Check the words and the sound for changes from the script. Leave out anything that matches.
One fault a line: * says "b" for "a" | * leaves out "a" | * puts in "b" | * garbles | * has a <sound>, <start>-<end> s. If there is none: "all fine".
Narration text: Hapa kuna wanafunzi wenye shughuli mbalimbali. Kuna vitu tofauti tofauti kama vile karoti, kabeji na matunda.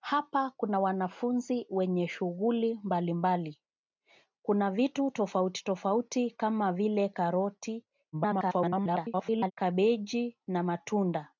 * garbles